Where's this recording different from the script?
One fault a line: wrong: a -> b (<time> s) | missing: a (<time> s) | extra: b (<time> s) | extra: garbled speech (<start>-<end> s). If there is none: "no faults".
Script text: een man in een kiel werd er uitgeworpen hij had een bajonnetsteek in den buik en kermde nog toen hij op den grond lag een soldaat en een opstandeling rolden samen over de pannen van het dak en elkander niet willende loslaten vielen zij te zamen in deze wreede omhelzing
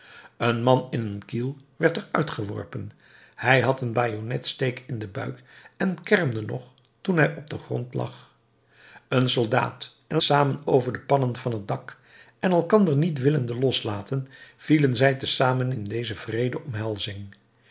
missing: een opstandeling rolden (10.2 s)